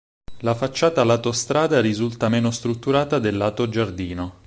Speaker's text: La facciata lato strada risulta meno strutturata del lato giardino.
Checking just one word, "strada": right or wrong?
right